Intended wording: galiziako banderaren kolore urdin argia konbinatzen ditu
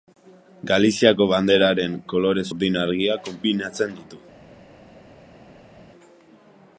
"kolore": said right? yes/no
yes